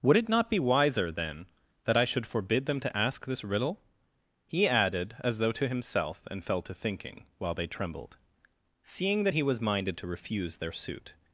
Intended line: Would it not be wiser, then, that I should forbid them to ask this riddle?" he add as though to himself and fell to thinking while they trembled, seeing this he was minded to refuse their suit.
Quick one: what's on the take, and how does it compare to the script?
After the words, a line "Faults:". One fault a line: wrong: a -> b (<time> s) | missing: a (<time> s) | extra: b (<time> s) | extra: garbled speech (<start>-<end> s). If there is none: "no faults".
Would it not be wiser, then, that I should forbid them to ask this riddle?" he added as though to himself and fell to thinking while they trembled, seeing that he was minded to refuse their suit.
Faults:
wrong: add -> added (4.7 s)
wrong: this -> that (9.2 s)